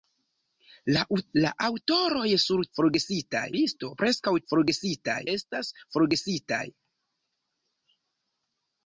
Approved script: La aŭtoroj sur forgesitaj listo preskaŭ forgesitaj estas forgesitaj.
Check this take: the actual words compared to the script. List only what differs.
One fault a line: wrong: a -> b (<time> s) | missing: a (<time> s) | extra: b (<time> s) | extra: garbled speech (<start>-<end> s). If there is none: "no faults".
no faults